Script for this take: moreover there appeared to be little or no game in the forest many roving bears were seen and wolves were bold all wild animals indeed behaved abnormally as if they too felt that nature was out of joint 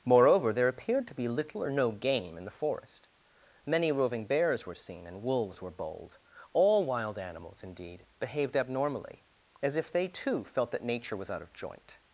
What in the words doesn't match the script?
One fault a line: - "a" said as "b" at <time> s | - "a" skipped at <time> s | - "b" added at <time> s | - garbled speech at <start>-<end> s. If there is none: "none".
none